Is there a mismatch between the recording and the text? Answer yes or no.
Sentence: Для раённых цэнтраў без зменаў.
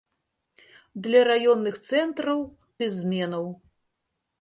no